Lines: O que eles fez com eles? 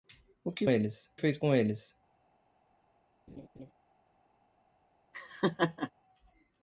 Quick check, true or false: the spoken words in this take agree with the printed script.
true